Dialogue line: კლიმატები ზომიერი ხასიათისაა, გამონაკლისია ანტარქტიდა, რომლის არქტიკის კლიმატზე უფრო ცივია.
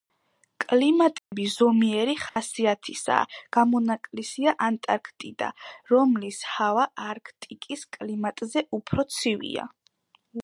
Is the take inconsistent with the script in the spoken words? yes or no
yes